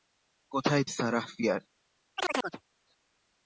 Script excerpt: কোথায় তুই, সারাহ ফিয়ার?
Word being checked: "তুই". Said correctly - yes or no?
no